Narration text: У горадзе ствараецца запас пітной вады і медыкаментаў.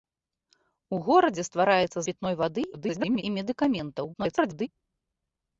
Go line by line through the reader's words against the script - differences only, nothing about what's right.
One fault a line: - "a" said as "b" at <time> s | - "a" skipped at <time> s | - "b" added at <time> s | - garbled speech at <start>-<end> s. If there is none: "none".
- "запас" skipped at 2.0 s
- garbled speech at 2.7-3.2 s
- garbled speech at 4.1-4.7 s